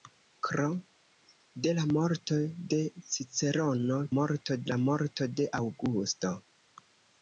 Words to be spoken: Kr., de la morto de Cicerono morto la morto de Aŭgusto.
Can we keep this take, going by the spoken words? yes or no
yes